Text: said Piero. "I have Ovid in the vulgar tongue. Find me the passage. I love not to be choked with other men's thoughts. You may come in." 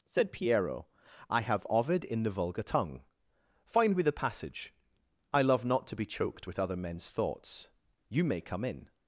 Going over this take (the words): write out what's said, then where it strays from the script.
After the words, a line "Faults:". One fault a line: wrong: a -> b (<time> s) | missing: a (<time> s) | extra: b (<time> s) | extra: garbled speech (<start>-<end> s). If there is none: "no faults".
said Piero. "I have Ovid in the vulgar tongue. Find me the passage. I love not to be choked with other men's thoughts. You may come in."
Faults:
no faults